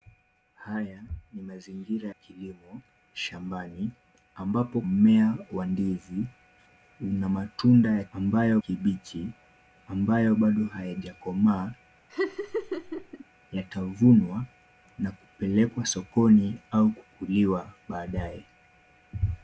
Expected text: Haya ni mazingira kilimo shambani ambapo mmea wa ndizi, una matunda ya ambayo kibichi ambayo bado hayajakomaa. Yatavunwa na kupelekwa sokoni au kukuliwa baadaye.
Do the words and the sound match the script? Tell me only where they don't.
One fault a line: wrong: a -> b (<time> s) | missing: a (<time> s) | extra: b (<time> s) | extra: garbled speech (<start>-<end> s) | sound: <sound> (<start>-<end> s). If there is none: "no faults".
sound: laugh (12.1-13.2 s)